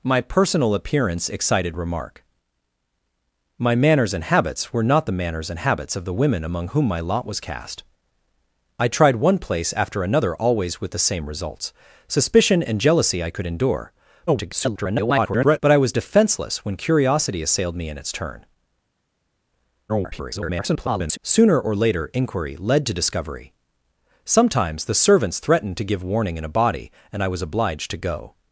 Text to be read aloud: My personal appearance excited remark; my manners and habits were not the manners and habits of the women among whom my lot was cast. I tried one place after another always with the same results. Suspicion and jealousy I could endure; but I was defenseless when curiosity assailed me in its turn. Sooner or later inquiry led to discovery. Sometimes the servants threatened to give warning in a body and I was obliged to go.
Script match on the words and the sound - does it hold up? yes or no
no